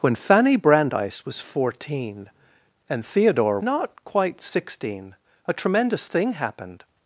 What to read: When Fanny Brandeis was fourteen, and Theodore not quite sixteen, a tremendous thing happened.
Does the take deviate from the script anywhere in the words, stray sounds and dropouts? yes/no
no